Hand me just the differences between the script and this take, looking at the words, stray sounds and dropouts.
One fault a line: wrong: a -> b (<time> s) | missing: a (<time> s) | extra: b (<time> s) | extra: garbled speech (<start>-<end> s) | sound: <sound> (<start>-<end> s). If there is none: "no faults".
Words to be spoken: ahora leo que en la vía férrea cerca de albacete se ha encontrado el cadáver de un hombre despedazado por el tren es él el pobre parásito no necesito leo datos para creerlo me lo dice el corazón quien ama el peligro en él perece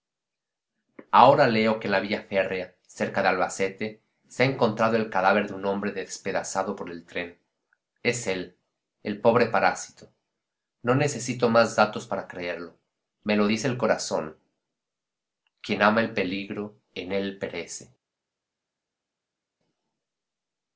wrong: leo -> más (11.5 s)